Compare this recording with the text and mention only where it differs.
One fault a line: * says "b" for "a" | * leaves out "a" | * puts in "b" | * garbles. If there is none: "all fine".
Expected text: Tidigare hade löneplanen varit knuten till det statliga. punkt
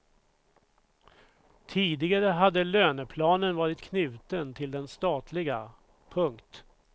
* says "den" for "det"